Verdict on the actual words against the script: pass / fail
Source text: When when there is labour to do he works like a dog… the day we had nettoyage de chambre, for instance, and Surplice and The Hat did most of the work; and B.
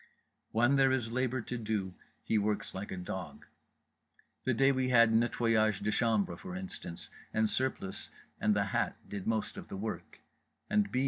fail